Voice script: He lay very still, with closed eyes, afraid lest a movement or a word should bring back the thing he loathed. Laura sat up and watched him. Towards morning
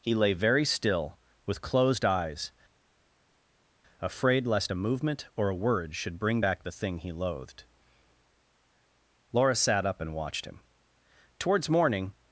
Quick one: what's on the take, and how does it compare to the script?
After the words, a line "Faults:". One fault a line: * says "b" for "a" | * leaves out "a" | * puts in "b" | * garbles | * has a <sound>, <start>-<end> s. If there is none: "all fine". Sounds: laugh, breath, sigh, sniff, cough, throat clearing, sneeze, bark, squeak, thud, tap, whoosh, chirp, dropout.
He lay very still, with closed eyes, afraid lest a movement or a word should bring back the thing he loathed. Laura sat up and watched him. Towards morning
Faults:
all fine